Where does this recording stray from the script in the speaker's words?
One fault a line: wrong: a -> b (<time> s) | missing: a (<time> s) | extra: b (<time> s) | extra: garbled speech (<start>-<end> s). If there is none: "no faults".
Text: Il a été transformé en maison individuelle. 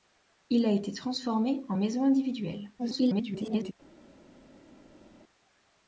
extra: garbled speech (2.8-3.7 s)